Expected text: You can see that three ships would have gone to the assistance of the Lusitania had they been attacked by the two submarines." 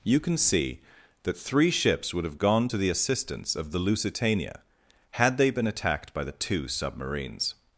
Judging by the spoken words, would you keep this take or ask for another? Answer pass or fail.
pass